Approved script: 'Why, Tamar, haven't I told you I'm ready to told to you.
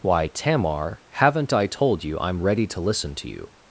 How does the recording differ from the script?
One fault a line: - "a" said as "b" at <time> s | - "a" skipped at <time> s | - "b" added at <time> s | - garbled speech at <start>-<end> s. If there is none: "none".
- "told" said as "listen" at 2.8 s